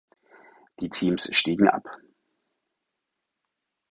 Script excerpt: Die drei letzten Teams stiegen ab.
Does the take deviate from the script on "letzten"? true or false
true